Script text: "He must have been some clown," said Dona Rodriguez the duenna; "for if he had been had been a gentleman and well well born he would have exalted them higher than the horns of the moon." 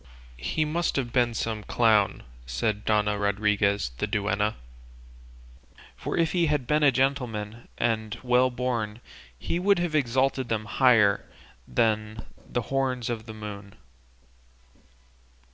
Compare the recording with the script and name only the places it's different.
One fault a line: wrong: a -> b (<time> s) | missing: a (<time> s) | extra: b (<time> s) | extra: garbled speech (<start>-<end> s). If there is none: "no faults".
missing: had been (6.8 s)
missing: well (8.5 s)